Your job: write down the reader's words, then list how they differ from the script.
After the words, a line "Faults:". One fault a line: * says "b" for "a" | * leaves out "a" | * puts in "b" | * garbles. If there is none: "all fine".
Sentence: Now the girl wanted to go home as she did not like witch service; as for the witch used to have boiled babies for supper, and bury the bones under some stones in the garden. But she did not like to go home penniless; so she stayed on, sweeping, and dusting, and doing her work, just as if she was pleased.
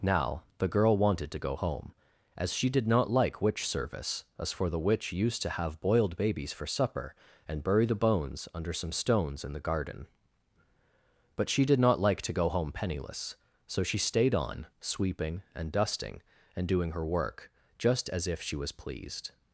Now the girl wanted to go home as she did not like witch service; as for the witch used to have boiled babies for supper, and bury the bones under some stones in the garden. But she did not like to go home penniless; so she stayed on, sweeping, and dusting, and doing her work, just as if she was pleased.
Faults:
all fine